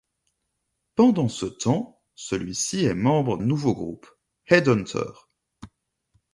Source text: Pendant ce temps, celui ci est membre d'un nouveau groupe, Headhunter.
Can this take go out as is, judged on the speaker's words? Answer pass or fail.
fail